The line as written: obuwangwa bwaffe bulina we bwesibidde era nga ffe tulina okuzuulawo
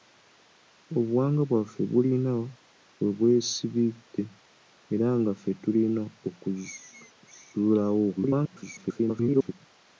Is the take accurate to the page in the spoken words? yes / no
no